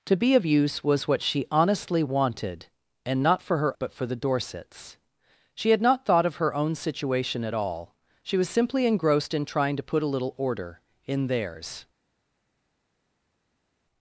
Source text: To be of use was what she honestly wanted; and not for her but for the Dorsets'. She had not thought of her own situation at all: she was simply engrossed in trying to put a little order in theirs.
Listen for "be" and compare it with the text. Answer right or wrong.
right